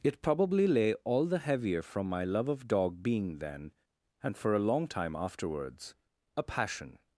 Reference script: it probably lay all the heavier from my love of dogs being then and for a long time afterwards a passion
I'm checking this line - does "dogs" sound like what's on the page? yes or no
no